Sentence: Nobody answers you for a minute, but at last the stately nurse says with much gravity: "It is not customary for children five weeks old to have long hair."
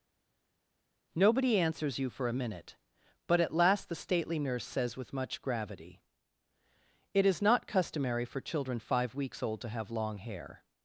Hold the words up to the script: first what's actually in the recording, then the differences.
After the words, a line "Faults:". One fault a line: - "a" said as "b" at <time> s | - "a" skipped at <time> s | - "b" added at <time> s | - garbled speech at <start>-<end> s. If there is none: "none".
Nobody answers you for a minute, but at last the stately nurse says with much gravity: "It is not customary for children five weeks old to have long hair."
Faults:
none